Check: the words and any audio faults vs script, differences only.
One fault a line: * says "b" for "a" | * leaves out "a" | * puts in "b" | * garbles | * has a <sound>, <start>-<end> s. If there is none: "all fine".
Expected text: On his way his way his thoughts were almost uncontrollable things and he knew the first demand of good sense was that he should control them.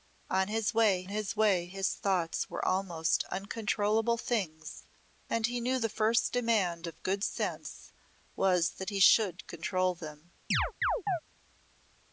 * has a chirp, 10.5-11.2 s